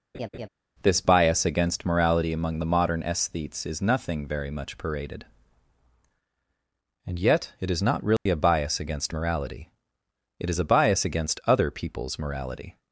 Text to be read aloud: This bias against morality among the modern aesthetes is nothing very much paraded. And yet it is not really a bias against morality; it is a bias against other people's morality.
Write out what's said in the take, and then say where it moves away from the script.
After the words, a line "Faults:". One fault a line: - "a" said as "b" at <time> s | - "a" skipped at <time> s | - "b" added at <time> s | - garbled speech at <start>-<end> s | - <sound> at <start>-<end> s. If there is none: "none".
This bias against morality among the modern aesthetes is nothing very much paraded. And yet it is not really a bias against morality; it is a bias against other people's morality.
Faults:
- laugh at 0.1-0.5 s
- dropout at 8.2-8.3 s